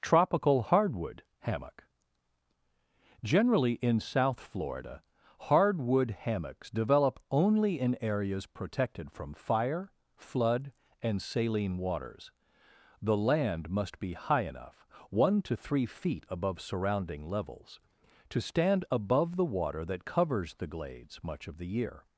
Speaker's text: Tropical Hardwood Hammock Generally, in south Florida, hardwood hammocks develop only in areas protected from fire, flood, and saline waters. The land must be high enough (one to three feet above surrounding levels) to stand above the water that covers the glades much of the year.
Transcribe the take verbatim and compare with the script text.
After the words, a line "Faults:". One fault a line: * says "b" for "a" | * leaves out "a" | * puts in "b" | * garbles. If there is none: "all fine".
Tropical Hardwood Hammock Generally, in south Florida, hardwood hammocks develop only in areas protected from fire, flood, and saline waters. The land must be high enough (one to three feet above surrounding levels) to stand above the water that covers the glades much of the year.
Faults:
all fine